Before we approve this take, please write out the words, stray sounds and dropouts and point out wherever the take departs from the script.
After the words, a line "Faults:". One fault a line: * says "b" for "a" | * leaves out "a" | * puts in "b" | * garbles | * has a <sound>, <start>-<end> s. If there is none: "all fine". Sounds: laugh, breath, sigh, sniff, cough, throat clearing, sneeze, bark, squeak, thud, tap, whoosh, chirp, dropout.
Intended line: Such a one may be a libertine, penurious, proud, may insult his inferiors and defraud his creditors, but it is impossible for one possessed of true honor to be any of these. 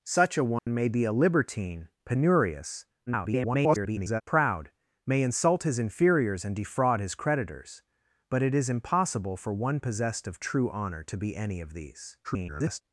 Such a one may be a libertine, penurious, [garbled] proud, may insult his inferiors and defraud his creditors, but it is impossible for one possessed of true honor to be any of these. [garbled]
Faults:
* has a dropout, 0.6-0.7 s
* garbles
* garbles